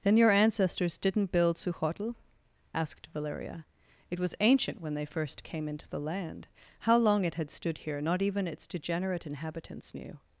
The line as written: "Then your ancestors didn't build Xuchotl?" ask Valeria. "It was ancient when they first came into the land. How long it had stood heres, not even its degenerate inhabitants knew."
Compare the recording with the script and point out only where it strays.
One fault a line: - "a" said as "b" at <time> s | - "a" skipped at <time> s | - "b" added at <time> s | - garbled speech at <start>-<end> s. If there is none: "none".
- "ask" said as "asked" at 2.7 s
- "heres" said as "here" at 7.8 s